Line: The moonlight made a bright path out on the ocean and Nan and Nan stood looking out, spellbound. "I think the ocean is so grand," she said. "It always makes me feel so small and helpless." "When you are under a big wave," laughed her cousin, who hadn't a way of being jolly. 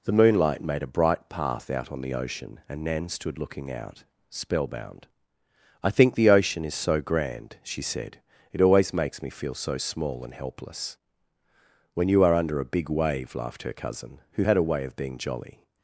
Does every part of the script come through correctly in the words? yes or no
no